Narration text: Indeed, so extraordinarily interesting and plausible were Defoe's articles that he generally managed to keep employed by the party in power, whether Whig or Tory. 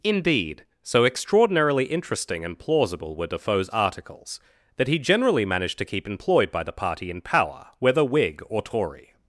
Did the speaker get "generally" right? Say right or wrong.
right